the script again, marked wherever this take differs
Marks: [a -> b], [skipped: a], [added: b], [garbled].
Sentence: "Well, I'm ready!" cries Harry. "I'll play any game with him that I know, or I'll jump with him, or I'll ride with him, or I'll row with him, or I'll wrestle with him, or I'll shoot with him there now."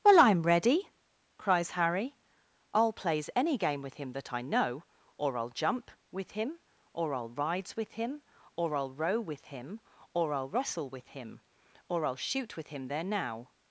"Well, I'm ready!" cries Harry. "I'll [play -> plays] any game with him that I know, or I'll jump with him, or I'll [ride -> rides] with him, or I'll row with him, or I'll wrestle with him, or I'll shoot with him there now."